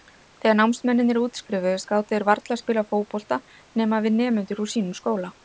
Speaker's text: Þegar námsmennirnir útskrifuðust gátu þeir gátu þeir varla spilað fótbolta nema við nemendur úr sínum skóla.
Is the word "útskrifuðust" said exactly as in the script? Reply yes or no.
yes